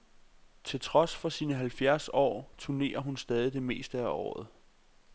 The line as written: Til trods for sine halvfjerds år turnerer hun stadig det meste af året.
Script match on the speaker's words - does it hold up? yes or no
yes